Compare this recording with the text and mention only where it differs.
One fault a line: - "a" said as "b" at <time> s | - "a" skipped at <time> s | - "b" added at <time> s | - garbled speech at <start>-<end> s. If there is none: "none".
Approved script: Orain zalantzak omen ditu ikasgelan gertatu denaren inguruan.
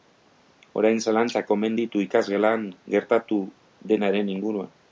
none